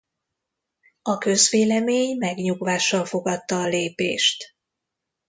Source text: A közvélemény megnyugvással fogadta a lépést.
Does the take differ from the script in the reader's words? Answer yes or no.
no